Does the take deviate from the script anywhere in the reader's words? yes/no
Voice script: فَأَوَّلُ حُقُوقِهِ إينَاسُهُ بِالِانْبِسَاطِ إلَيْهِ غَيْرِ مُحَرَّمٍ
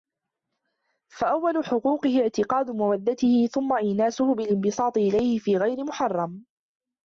yes